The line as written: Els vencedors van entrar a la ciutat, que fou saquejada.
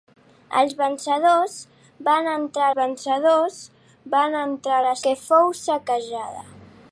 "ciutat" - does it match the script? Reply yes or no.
no